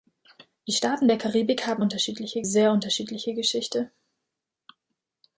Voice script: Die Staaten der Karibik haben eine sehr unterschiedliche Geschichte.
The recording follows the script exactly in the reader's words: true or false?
false